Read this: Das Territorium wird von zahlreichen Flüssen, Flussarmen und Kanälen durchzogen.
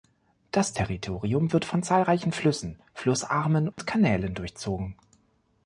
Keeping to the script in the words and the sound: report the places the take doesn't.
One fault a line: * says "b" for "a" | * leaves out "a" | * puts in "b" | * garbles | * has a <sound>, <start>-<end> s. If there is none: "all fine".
* has a dropout, 3.7-3.8 s